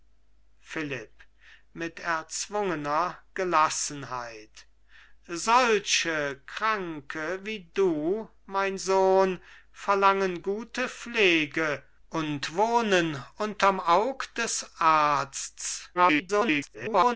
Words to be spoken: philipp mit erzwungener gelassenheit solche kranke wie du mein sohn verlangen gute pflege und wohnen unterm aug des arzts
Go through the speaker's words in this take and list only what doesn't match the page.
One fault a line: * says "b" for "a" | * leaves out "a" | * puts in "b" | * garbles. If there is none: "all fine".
* garbles